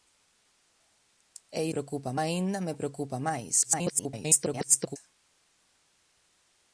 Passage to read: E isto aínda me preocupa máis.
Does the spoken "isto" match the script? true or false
false